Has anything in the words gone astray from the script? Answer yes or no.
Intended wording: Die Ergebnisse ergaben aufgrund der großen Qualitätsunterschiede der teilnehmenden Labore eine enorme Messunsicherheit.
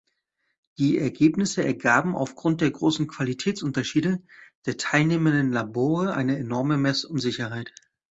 no